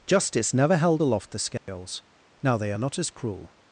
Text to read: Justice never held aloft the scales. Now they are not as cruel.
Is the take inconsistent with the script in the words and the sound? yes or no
yes